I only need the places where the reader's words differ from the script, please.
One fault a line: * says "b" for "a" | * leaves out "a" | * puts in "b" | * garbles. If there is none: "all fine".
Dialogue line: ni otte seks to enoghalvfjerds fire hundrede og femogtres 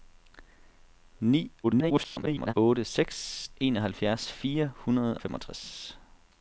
* garbles
* leaves out "to"
* leaves out "og"